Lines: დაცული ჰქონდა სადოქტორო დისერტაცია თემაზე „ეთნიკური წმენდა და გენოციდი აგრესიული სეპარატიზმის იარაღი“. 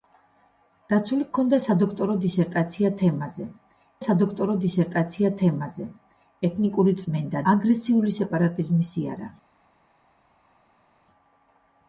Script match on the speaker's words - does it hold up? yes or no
no